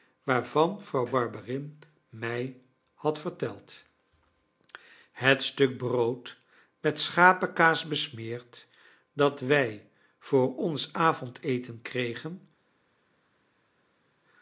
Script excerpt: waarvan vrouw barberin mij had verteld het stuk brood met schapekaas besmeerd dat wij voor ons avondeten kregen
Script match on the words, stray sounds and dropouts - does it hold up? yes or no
yes